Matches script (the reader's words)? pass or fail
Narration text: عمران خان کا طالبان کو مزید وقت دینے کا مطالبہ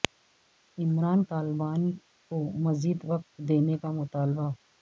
fail